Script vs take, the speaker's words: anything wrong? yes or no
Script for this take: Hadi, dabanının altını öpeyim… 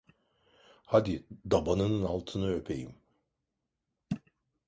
no